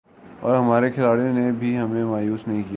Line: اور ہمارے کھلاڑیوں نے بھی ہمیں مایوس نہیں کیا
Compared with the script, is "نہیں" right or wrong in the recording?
right